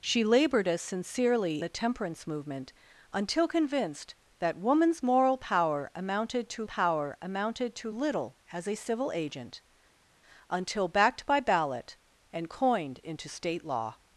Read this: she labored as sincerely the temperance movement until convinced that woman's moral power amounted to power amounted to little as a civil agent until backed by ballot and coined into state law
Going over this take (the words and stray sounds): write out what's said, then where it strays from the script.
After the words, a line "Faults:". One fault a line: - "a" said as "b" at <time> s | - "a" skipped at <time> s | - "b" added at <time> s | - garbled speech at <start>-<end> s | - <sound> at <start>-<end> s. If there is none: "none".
she labored as sincerely the temperance movement until convinced that woman's moral power amounted to power amounted to little as a civil agent until backed by ballot and coined into state law
Faults:
none